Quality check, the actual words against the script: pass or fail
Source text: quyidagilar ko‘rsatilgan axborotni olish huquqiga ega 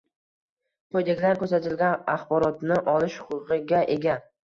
pass